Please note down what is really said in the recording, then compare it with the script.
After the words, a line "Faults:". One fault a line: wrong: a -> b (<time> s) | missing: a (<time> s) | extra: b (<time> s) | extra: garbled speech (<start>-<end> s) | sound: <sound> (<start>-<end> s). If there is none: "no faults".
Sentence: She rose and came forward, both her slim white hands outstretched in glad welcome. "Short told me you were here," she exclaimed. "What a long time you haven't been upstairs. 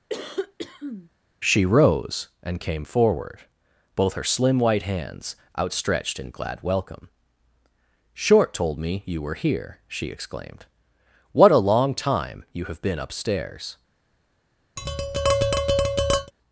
She rose and came forward, both her slim white hands outstretched in glad welcome. "Short told me you were here," she exclaimed. "What a long time you have been upstairs.
Faults:
sound: cough (0.1-1.1 s)
wrong: haven't -> have (12.7 s)
sound: tap (14.8-16.3 s)